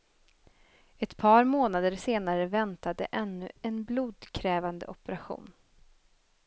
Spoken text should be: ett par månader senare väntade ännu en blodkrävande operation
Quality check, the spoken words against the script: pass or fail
pass